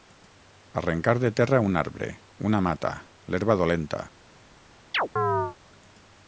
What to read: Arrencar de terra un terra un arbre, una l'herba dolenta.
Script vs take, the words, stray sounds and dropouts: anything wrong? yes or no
yes